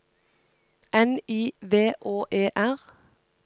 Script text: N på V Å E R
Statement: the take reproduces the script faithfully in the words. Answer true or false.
false